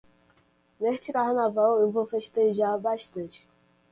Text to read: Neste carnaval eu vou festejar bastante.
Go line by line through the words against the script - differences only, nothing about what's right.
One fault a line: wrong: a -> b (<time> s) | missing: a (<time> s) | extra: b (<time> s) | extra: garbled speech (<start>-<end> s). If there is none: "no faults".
no faults